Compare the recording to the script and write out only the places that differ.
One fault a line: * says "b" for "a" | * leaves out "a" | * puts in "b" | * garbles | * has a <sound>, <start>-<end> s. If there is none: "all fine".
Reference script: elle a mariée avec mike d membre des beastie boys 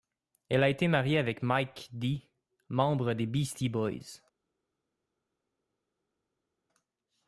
* puts in "été"